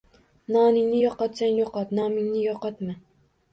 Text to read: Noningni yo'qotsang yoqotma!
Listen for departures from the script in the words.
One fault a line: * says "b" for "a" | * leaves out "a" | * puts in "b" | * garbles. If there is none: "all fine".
* puts in "yo'qot nomingni"